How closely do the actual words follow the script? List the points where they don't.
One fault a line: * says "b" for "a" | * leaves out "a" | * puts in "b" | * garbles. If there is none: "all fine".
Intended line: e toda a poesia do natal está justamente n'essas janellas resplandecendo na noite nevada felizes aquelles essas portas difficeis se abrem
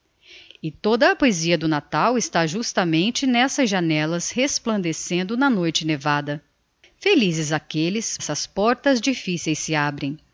all fine